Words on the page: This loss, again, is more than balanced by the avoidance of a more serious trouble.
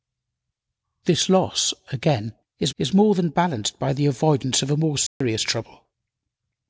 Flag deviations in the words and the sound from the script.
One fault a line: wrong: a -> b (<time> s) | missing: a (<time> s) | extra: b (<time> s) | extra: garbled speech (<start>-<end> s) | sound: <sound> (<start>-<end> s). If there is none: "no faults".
extra: is (2.8 s)
sound: dropout (5.1-5.2 s)